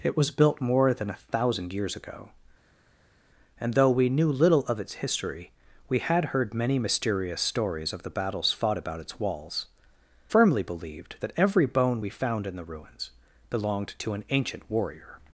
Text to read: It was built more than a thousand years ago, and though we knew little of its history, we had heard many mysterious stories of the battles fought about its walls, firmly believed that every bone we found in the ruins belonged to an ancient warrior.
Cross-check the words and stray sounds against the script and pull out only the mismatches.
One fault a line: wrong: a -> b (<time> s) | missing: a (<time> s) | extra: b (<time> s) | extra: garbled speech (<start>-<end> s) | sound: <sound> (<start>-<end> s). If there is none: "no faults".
no faults